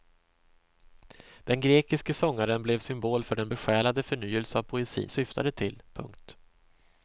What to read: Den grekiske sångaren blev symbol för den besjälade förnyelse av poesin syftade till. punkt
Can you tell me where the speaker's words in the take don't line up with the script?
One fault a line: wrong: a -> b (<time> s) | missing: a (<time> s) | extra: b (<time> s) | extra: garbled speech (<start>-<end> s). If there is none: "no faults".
no faults